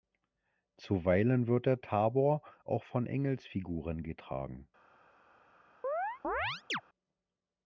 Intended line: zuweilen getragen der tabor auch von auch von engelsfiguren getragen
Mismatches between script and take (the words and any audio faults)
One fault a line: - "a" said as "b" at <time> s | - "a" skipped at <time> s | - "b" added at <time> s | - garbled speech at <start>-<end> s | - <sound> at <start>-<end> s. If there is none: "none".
- "getragen" said as "wird" at 1.4 s
- "auch von" skipped at 3.0 s
- chirp at 5.8-6.8 s